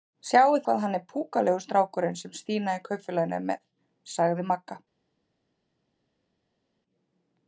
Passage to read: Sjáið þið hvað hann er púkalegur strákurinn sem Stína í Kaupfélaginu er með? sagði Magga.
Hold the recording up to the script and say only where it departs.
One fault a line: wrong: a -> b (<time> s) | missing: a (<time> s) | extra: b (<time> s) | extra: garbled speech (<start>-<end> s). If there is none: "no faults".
missing: þið (0.6 s)